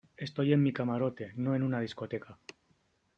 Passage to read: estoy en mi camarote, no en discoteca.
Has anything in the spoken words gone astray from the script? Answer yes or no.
yes